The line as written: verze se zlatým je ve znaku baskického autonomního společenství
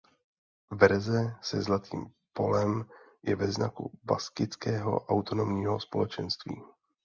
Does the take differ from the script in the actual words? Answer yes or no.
yes